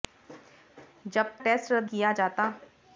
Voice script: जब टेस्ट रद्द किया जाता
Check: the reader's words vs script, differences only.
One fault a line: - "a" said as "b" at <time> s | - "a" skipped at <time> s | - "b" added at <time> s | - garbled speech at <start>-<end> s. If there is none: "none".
none